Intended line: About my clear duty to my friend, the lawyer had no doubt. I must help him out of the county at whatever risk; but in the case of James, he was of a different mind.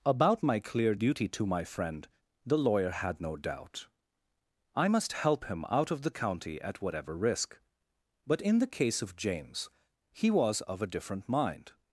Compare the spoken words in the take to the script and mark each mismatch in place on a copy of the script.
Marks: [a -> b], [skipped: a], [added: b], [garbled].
About my clear duty to my friend, the lawyer had no doubt. I must help him out of the county at whatever risk; but in the case of James, he was of a different mind.